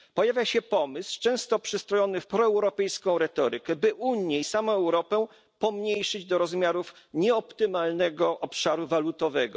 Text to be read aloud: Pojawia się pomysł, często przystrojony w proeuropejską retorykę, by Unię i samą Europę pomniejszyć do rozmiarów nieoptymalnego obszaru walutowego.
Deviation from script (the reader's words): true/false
false